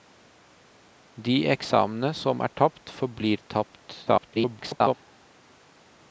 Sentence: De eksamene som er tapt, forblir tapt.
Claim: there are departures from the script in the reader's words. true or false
true